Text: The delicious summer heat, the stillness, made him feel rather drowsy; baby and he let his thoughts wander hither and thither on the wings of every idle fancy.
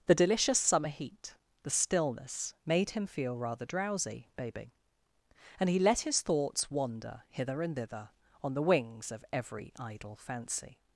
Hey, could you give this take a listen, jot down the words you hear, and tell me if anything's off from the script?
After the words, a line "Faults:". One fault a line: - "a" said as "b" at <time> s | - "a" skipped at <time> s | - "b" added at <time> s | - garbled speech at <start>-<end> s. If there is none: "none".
The delicious summer heat, the stillness, made him feel rather drowsy; baby and he let his thoughts wander hither and thither on the wings of every idle fancy.
Faults:
none